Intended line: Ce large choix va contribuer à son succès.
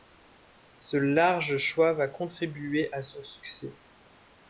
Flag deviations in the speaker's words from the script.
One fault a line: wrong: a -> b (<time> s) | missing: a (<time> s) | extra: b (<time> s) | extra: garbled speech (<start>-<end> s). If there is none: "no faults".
no faults